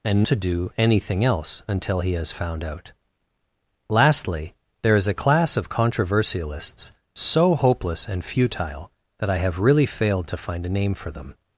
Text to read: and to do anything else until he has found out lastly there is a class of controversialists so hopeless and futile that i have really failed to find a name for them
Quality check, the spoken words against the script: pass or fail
pass